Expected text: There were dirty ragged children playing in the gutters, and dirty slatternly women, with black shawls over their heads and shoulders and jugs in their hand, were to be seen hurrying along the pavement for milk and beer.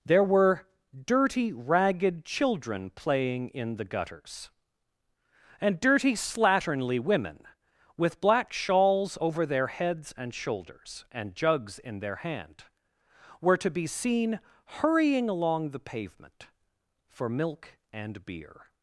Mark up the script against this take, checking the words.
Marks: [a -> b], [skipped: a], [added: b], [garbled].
There were dirty ragged children playing in the gutters, and dirty slatternly women, with black shawls over their heads and shoulders and jugs in their hand, were to be seen hurrying along the pavement for milk and beer.